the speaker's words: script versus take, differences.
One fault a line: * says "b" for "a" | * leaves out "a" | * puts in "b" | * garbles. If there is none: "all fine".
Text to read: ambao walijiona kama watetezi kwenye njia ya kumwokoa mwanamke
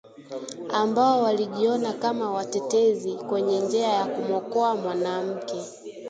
all fine